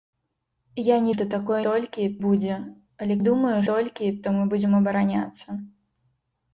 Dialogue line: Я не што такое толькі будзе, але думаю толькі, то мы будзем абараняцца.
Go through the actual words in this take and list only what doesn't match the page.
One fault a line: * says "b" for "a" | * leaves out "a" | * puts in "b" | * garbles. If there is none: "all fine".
all fine